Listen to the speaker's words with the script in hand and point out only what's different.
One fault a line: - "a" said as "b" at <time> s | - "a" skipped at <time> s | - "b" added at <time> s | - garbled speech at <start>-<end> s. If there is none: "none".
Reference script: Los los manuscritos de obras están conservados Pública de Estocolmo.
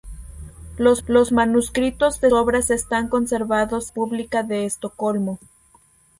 none